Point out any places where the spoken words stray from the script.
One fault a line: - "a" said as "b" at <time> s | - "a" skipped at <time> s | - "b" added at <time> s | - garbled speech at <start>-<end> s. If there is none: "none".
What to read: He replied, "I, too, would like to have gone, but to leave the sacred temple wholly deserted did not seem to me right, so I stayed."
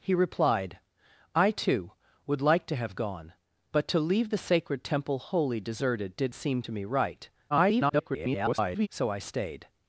- "not" skipped at 6.3 s
- garbled speech at 7.5-8.9 s